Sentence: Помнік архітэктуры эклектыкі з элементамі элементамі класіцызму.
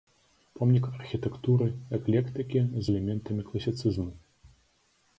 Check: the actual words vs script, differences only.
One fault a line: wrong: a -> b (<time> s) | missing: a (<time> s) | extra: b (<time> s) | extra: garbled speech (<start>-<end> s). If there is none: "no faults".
missing: элементамі (3.4 s)